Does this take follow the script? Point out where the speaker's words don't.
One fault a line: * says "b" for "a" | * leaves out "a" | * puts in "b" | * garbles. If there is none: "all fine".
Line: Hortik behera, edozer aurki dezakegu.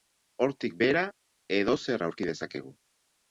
all fine